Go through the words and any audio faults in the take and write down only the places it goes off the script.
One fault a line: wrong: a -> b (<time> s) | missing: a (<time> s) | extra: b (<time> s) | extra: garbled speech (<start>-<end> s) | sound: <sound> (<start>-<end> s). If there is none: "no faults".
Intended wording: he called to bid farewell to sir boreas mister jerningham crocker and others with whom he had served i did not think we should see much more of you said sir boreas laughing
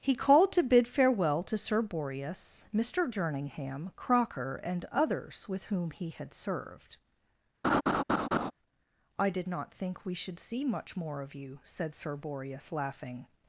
sound: laugh (7.6-8.5 s)